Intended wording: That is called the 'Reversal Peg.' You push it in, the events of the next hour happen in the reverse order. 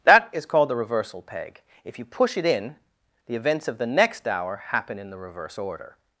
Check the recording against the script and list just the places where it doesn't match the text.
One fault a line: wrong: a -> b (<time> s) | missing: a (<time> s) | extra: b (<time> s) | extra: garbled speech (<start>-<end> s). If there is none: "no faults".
extra: If (1.8 s)